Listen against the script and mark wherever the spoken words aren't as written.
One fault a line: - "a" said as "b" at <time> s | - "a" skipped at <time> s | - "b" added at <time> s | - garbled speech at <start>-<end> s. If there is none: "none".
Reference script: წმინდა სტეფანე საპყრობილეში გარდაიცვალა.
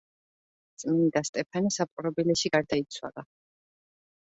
none